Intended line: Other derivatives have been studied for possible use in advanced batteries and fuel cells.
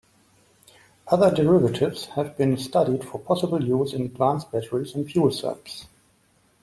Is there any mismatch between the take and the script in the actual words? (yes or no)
no